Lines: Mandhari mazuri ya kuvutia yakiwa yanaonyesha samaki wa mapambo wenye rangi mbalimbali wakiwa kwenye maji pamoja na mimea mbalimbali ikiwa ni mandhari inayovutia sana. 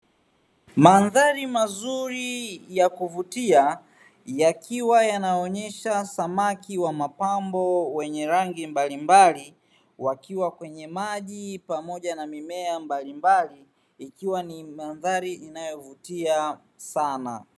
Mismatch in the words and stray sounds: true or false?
false